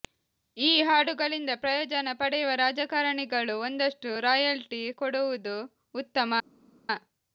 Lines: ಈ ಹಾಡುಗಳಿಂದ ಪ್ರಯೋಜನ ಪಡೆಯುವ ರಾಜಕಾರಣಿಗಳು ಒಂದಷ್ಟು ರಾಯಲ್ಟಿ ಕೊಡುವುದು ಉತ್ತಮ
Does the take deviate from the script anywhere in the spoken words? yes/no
no